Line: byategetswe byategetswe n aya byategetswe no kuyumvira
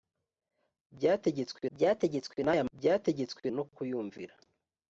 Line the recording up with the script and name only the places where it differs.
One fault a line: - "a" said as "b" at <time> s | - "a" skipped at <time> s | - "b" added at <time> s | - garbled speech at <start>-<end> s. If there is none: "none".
none